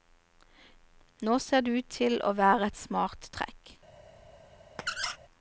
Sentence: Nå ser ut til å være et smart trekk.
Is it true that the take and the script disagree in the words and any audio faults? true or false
true